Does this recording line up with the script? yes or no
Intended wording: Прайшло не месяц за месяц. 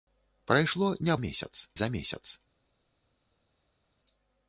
yes